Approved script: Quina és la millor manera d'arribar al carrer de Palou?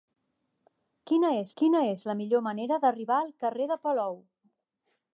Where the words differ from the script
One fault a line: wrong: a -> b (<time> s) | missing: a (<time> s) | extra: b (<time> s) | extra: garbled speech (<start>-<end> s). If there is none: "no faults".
extra: quina és (1.6 s)